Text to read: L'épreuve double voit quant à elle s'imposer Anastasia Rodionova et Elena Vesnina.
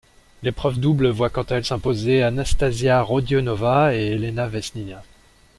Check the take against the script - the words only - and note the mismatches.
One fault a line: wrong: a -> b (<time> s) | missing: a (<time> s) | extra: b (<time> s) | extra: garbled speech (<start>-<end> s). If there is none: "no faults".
no faults